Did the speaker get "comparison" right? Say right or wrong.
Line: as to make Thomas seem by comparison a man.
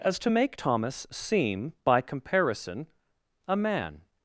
right